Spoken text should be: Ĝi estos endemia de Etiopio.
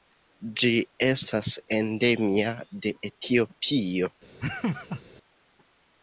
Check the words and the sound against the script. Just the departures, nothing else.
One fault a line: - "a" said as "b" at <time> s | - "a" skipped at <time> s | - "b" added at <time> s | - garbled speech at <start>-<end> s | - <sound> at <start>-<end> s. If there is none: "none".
- "estos" said as "estas" at 1.1 s
- laugh at 4.4-5.0 s